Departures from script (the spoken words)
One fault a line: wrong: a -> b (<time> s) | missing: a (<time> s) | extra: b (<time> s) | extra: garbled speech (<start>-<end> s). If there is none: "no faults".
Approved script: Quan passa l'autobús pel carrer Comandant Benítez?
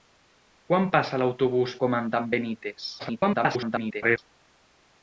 missing: pel carrer (1.8 s)
extra: garbled speech (3.0-4.2 s)